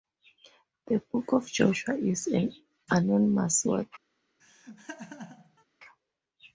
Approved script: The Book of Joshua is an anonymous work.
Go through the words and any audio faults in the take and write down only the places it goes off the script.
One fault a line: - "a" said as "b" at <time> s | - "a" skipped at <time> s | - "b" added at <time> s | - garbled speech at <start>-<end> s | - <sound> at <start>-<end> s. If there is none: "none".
- laugh at 4.4-5.6 s